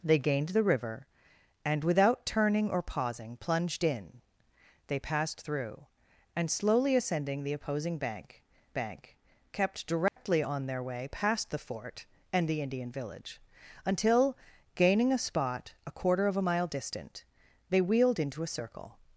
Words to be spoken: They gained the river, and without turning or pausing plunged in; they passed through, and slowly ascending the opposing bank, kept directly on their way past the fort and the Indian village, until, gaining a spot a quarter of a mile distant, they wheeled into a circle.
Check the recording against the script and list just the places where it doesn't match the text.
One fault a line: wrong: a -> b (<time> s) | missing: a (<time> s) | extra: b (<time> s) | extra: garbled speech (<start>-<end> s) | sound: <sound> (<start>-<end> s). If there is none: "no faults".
extra: bank (8.7 s)
sound: dropout (10.1-10.2 s)